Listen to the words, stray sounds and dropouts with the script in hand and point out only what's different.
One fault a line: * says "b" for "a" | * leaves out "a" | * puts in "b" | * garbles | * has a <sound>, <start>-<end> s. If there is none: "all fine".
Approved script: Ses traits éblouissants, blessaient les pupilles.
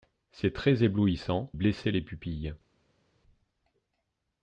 all fine